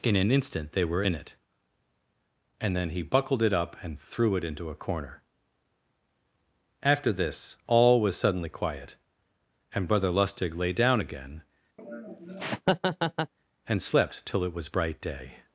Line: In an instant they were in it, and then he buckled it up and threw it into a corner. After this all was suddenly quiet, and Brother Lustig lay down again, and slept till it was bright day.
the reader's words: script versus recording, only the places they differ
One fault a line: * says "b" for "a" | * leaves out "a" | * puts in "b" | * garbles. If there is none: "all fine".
all fine